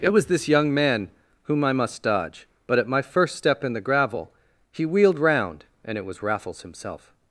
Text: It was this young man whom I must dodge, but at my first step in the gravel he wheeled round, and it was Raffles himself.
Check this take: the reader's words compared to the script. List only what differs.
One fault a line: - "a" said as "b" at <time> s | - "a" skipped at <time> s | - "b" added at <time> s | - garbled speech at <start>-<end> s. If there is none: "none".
none